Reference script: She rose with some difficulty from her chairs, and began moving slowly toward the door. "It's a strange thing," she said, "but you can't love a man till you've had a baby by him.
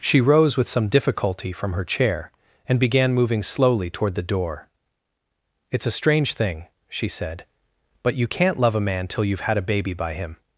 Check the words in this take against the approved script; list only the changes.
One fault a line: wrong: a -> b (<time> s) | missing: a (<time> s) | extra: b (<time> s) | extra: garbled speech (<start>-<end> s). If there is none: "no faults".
wrong: chairs -> chair (1.9 s)